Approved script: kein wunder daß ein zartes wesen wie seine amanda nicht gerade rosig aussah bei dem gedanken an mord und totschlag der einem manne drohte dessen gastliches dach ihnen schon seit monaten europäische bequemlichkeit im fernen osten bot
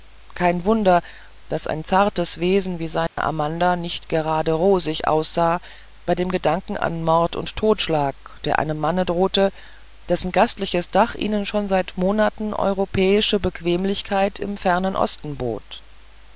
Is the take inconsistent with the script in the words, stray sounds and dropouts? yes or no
yes